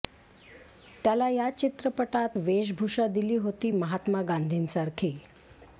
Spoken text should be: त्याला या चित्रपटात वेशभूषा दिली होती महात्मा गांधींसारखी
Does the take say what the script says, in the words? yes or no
yes